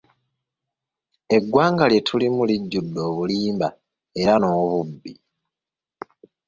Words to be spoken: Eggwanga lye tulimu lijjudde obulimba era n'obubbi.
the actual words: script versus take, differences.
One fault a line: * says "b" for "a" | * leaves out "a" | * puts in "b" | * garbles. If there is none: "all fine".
all fine